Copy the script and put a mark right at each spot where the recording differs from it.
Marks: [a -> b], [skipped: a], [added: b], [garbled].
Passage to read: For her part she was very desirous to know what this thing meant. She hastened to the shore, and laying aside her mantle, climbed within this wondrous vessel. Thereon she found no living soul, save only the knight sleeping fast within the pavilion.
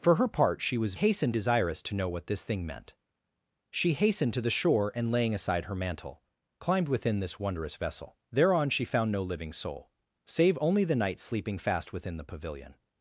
For her part she was [very -> hastened] desirous to know what this thing meant. She hastened to the shore, and laying aside her mantle, climbed within this wondrous vessel. Thereon she found no living soul, save only the knight sleeping fast within the pavilion.